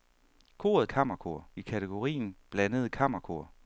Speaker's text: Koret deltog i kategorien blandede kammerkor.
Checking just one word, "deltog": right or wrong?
wrong